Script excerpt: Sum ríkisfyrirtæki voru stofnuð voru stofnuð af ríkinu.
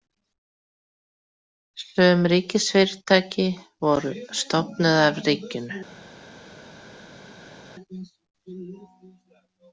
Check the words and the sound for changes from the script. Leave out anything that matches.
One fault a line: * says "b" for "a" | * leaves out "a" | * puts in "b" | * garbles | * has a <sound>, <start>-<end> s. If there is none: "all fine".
* leaves out "voru stofnuð"